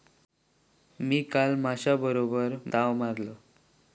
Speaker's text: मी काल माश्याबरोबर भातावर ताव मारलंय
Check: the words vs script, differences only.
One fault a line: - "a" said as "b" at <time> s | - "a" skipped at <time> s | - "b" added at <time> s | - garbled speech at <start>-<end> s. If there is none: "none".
- "भातावर" skipped at 2.5 s